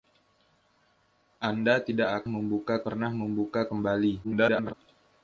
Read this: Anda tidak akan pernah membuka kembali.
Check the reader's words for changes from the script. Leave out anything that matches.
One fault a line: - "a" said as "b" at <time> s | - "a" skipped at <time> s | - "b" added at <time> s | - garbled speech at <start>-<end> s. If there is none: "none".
- "akan" said as "membuka" at 2.3 s
- garbled speech at 4.2-4.7 s